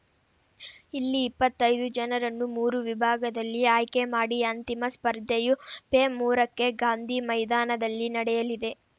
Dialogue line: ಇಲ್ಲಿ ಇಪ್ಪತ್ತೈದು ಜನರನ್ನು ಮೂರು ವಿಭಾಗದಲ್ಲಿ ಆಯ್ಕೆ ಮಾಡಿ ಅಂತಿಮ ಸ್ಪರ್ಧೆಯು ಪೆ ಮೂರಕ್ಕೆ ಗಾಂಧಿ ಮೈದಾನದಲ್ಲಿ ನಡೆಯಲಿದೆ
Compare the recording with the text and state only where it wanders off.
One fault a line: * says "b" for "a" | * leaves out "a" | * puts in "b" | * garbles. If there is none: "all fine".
all fine